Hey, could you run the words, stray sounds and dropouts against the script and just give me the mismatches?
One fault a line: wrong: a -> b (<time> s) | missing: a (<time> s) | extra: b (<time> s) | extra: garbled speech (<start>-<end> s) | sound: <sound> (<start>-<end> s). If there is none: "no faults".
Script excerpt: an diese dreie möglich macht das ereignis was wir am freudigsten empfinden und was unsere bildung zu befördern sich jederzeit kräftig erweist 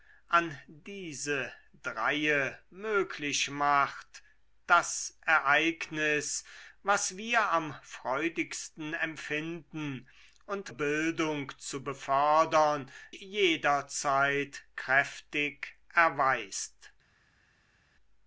missing: was unsere (10.7 s)
missing: sich (12.9 s)